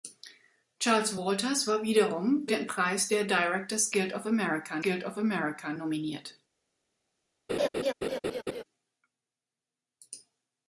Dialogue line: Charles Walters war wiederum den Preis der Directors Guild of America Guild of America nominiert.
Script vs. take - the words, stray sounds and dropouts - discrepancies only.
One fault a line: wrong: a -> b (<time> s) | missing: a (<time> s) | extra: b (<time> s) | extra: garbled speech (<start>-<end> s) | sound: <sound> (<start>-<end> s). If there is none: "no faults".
sound: laugh (7.5-8.6 s)